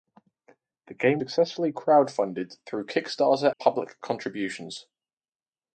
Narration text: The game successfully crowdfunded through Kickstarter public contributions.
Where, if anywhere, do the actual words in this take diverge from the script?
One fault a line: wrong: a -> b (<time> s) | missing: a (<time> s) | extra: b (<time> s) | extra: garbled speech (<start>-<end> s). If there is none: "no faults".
no faults